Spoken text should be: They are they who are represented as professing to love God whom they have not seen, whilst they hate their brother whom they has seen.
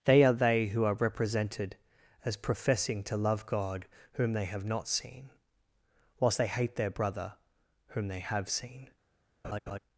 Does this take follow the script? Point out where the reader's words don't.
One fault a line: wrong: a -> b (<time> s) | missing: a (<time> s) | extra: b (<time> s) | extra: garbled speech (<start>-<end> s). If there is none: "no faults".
wrong: has -> have (8.2 s)